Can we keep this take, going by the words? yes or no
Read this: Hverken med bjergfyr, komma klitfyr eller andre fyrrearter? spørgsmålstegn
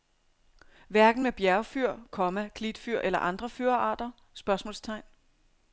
yes